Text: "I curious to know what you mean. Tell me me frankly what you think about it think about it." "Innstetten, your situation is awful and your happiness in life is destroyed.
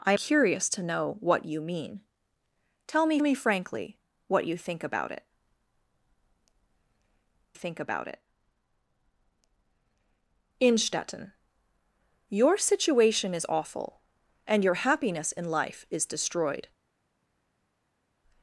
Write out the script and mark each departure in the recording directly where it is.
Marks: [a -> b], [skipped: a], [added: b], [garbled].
"I curious to know what you mean. Tell me me frankly what you think about it think about it." "Innstetten, your situation is awful and your happiness in life is destroyed.